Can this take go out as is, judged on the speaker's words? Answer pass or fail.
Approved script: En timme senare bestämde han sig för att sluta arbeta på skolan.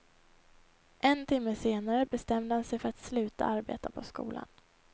pass